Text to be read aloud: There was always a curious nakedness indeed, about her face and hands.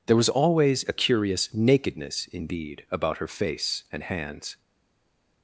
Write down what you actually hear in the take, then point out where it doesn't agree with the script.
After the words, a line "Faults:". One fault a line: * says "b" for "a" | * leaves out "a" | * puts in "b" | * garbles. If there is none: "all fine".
There was always a curious nakedness indeed, about her face and hands.
Faults:
all fine